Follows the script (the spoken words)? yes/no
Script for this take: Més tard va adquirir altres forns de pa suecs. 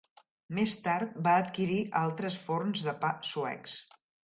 yes